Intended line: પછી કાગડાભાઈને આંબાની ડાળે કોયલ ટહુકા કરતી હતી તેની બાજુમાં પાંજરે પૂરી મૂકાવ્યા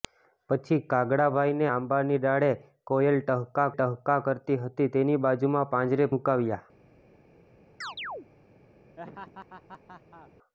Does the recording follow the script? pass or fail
fail